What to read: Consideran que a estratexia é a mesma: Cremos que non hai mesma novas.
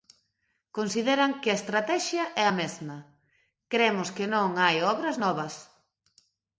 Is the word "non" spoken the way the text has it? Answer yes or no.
yes